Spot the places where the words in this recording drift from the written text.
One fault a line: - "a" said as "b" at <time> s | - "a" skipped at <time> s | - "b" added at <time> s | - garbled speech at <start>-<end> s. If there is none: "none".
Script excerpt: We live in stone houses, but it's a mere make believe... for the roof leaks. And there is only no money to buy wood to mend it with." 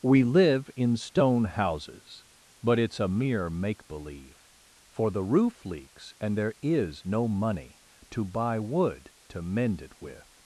- "only" skipped at 7.0 s